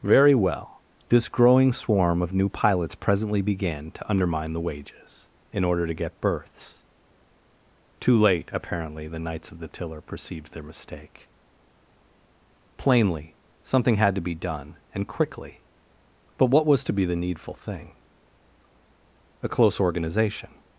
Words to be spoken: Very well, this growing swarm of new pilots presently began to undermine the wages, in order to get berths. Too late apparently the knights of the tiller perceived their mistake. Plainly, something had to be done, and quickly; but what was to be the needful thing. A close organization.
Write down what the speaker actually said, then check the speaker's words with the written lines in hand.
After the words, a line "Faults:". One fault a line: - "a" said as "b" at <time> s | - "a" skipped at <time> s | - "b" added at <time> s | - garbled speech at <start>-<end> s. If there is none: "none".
Very well, this growing swarm of new pilots presently began to undermine the wages, in order to get berths. Too late apparently the knights of the tiller perceived their mistake. Plainly, something had to be done, and quickly; but what was to be the needful thing. A close organization.
Faults:
none